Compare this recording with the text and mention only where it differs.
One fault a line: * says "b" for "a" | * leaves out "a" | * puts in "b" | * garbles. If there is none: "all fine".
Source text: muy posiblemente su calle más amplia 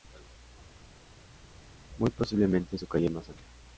all fine